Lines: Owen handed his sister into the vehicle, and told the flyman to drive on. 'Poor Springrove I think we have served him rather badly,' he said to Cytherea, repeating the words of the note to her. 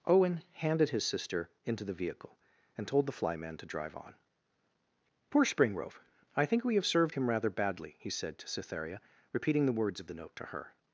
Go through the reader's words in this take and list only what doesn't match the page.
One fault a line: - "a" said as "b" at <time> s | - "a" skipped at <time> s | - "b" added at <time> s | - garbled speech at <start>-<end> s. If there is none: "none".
none